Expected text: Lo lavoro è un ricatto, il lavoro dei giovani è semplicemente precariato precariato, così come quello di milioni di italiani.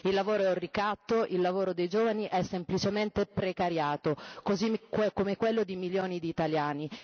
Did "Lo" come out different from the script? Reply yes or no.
yes